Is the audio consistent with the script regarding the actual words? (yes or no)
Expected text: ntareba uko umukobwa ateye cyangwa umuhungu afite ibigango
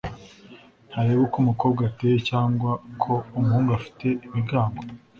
no